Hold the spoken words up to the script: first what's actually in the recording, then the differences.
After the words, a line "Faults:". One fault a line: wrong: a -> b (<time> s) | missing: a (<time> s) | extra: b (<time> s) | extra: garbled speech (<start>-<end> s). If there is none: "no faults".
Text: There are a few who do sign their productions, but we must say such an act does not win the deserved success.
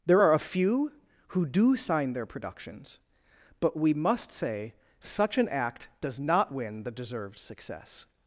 There are a few who do sign their productions, but we must say such an act does not win the deserved success.
Faults:
no faults